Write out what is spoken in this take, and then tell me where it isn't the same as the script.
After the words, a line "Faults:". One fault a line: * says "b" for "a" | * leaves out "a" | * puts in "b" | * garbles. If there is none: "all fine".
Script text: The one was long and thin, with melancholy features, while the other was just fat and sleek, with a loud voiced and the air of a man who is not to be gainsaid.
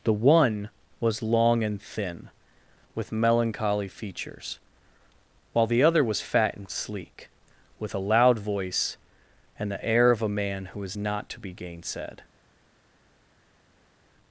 The one was long and thin, with melancholy features, while the other was fat and sleek, with a loud voice and the air of a man who is not to be gainsaid.
Faults:
* leaves out "just"
* says "voice" for "voiced"